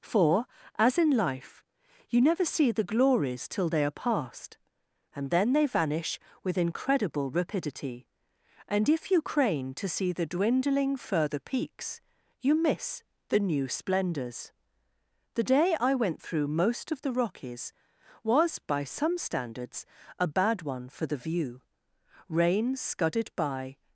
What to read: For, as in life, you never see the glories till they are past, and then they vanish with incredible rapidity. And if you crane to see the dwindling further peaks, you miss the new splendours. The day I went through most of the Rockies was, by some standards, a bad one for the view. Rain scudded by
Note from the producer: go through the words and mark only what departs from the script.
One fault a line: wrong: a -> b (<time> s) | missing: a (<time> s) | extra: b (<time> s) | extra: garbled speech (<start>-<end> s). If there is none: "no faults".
no faults